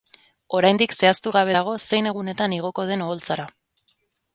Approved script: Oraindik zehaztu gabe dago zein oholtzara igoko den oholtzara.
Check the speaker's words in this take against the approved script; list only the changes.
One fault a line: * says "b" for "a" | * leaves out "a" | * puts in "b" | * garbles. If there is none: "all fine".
* says "egunetan" for "oholtzara"